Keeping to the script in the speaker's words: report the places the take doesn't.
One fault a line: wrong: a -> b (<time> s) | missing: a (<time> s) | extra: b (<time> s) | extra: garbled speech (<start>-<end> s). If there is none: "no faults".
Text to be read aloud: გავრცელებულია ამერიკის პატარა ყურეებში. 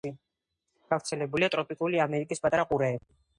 extra: ტროპიკული (1.6 s)